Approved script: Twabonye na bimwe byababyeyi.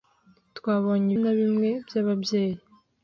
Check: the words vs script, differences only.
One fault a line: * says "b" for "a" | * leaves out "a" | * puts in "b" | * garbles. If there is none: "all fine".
all fine